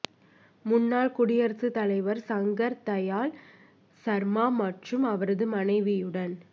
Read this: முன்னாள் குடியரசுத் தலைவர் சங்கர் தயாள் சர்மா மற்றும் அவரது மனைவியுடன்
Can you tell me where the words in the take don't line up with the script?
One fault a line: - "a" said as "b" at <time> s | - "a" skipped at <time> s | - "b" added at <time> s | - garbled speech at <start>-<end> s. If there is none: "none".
none